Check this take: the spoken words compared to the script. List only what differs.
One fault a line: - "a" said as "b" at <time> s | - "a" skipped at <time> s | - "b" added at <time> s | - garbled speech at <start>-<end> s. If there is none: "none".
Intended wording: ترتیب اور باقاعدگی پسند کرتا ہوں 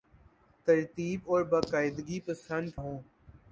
- "کرتا" skipped at 2.7 s